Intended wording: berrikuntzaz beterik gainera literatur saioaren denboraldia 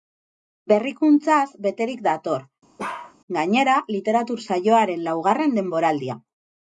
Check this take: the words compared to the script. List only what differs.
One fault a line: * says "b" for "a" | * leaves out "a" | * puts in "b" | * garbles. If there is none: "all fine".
* puts in "dator"
* puts in "laugarren"